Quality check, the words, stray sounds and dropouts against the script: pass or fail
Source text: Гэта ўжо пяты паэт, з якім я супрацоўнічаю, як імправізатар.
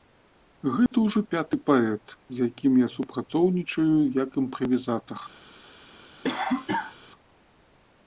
fail